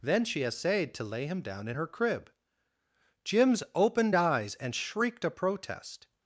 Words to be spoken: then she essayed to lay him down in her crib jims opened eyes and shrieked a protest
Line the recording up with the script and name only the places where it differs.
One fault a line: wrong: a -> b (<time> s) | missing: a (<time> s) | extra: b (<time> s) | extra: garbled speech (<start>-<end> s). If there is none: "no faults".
no faults